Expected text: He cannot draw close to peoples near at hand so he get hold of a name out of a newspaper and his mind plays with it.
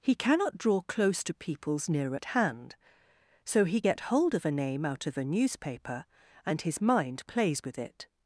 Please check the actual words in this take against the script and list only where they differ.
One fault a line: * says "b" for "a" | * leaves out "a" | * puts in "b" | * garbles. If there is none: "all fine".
all fine